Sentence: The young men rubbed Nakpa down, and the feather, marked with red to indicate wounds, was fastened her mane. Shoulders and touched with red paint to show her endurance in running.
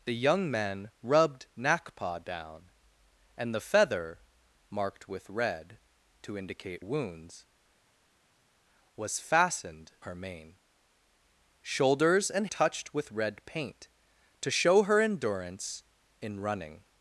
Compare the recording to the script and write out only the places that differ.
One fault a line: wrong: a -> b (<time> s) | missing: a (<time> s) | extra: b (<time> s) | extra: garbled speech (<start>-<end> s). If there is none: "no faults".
no faults